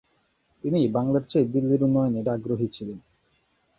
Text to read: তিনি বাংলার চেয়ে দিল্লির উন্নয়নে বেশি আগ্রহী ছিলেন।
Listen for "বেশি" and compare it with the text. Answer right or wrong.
wrong